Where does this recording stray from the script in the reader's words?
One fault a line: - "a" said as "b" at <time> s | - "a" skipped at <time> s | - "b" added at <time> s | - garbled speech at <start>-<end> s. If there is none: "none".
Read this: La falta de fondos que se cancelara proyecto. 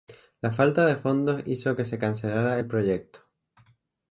- "hizo" added at 1.4 s
- "el" added at 2.6 s